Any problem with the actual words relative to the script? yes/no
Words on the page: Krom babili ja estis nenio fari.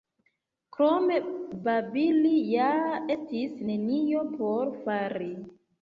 yes